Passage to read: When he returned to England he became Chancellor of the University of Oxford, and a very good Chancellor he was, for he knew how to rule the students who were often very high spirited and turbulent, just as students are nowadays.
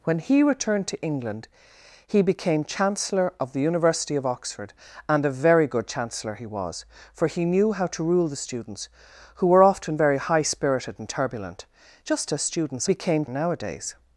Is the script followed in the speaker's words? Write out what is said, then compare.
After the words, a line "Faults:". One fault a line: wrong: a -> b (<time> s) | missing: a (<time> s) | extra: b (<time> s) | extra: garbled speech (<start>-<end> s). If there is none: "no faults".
When he returned to England he became Chancellor of the University of Oxford, and a very good Chancellor he was, for he knew how to rule the students who were often very high spirited and turbulent, just as students became nowadays.
Faults:
wrong: are -> became (12.8 s)